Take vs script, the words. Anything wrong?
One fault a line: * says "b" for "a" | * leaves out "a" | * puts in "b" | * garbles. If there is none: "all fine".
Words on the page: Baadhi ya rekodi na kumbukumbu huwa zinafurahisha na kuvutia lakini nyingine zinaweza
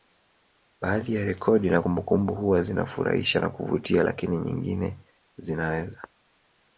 all fine